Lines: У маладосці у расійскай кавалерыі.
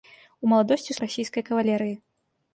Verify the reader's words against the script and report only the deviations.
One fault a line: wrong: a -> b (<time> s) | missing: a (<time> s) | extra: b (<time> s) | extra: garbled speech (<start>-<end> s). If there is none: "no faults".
no faults